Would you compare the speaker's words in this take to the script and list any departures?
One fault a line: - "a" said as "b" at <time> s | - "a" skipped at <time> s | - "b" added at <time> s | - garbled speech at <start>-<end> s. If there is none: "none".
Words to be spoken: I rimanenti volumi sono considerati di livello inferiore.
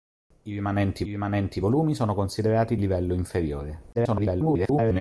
- "rimanenti" added at 1.1 s
- "di" skipped at 2.8 s
- garbled speech at 3.9-5.0 s